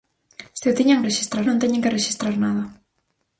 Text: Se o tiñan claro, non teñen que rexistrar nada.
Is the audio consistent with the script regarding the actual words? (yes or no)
no